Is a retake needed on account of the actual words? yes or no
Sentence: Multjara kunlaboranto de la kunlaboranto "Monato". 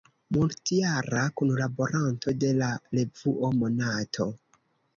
yes